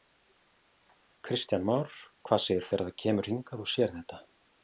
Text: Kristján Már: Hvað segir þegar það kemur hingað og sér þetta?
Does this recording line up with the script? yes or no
yes